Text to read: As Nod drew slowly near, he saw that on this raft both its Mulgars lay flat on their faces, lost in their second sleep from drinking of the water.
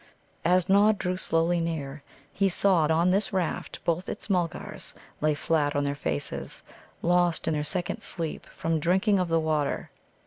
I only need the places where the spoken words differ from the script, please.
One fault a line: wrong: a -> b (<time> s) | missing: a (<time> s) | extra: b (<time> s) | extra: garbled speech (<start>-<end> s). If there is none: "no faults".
missing: that (2.9 s)